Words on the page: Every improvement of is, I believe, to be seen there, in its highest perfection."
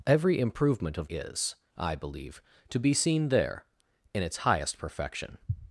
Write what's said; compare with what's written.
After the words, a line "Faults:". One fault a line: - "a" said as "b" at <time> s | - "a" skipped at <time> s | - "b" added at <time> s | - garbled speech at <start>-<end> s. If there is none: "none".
Every improvement of is, I believe, to be seen there, in its highest perfection."
Faults:
none